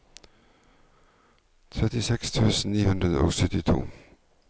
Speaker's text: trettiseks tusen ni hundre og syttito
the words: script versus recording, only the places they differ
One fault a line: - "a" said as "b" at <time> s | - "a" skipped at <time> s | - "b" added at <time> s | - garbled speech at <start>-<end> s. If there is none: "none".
none